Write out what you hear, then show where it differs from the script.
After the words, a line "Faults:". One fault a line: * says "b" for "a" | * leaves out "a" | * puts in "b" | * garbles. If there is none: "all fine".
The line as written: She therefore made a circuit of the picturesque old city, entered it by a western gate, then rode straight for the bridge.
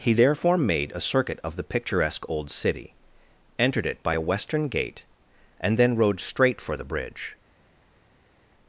He therefore made a circuit of the picturesque old city, entered it by a western gate, and then rode straight for the bridge.
Faults:
* says "He" for "She"
* puts in "and"